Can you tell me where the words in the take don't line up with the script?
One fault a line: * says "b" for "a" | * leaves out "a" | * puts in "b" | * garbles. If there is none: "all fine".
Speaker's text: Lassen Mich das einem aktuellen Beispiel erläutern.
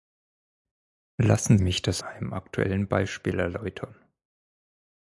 all fine